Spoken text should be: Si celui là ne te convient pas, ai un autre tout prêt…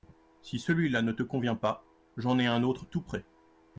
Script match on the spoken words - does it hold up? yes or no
no